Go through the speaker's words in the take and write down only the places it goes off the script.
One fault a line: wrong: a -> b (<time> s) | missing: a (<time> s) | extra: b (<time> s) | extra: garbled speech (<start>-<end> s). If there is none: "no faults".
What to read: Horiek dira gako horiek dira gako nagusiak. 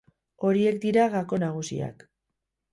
missing: horiek dira gako (1.4 s)